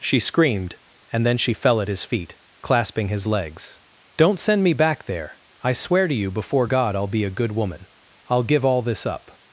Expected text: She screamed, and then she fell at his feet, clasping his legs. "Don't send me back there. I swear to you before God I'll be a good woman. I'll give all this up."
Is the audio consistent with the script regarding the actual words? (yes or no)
yes